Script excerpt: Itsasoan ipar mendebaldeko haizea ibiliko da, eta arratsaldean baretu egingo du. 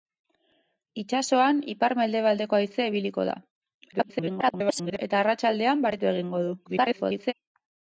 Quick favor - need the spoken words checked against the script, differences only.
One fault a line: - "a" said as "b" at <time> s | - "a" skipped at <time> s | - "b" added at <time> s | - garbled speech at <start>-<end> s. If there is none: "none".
- garbled speech at 3.9-5.0 s
- garbled speech at 6.6-7.3 s